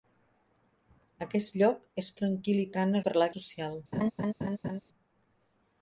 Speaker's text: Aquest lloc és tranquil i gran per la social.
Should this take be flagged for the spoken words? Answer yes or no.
no